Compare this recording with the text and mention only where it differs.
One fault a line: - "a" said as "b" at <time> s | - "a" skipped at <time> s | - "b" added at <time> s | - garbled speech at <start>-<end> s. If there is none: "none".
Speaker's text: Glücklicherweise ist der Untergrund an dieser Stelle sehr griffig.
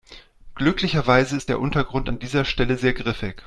none